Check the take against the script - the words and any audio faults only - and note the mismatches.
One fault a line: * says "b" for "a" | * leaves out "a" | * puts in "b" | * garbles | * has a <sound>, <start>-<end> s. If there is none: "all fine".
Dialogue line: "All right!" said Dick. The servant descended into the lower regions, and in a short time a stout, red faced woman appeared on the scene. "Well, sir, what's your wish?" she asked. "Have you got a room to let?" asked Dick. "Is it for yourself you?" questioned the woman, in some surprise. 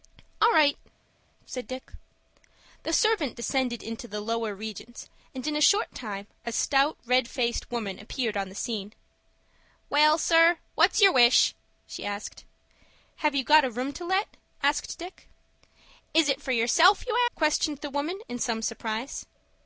all fine